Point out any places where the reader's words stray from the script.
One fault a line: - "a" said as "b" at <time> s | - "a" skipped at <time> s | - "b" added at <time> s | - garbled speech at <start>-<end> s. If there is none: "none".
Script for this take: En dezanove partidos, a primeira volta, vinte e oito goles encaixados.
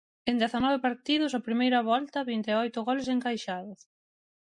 none